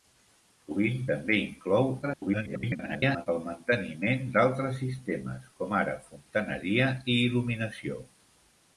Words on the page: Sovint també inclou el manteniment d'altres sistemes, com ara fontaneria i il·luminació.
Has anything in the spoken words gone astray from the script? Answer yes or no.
yes